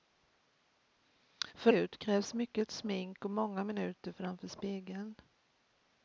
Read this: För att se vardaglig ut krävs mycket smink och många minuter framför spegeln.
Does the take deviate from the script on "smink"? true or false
false